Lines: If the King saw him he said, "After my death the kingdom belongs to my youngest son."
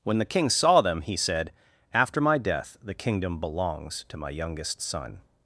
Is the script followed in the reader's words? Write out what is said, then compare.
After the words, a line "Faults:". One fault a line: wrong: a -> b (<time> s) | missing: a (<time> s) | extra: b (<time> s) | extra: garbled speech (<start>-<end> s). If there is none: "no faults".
When the King saw them he said, "After my death the kingdom belongs to my youngest son."
Faults:
wrong: If -> When (0.0 s)
wrong: him -> them (0.8 s)